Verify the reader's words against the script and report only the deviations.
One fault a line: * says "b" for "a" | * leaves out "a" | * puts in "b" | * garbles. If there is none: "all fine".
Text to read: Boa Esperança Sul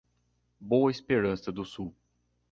* puts in "do"